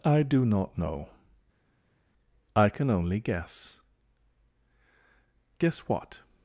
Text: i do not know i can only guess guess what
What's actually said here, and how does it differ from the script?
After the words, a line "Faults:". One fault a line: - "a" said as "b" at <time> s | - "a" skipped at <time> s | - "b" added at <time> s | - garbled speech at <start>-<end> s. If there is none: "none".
i do not know i can only guess guess what
Faults:
none